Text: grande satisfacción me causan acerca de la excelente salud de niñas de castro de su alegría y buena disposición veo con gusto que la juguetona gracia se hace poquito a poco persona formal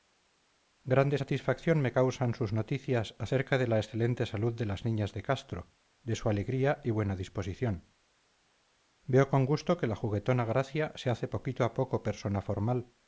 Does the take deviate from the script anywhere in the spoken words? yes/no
yes